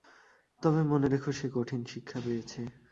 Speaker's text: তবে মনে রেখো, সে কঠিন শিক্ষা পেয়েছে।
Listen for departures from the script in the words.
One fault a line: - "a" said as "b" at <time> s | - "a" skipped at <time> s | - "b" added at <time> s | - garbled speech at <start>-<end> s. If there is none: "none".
none